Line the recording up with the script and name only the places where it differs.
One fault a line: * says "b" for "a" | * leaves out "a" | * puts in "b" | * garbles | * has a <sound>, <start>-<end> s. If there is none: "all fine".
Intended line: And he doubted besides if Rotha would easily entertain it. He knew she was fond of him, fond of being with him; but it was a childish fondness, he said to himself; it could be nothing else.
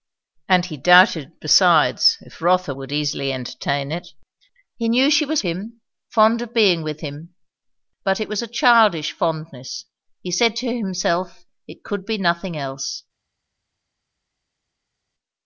* leaves out "fond of"